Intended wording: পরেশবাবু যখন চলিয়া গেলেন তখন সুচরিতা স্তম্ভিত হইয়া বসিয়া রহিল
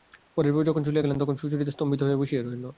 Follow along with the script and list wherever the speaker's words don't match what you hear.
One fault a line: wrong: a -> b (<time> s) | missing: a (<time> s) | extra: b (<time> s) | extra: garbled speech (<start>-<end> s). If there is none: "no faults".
no faults